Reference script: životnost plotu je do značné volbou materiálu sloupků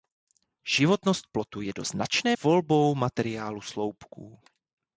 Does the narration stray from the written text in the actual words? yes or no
no